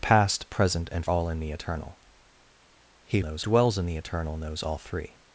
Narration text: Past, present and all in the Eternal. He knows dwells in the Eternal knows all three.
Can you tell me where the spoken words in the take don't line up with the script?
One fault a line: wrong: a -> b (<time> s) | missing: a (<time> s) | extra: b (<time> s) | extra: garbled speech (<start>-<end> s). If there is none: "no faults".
no faults